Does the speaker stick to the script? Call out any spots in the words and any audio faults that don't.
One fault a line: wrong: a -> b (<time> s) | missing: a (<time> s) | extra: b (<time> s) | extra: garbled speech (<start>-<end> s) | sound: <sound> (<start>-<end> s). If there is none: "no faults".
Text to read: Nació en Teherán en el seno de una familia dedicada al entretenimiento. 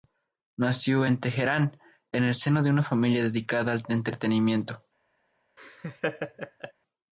sound: laugh (5.6-6.7 s)